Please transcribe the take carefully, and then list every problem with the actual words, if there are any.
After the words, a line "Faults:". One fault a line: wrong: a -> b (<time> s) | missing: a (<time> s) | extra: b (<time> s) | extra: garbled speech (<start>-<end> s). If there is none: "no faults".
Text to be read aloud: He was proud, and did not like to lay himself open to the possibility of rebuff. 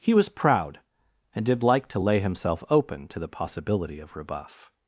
He was proud, and did like to lay himself open to the possibility of rebuff.
Faults:
missing: not (1.6 s)